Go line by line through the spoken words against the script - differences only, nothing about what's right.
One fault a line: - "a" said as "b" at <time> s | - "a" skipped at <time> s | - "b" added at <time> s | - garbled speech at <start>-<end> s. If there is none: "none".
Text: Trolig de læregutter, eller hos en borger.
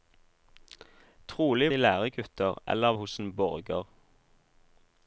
none